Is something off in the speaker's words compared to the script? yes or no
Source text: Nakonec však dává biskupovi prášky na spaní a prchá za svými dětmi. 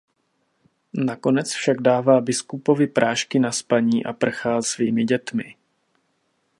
yes